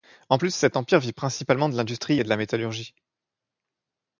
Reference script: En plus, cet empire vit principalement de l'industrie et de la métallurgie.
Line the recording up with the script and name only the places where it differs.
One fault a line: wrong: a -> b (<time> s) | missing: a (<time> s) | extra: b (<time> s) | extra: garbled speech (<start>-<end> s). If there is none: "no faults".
no faults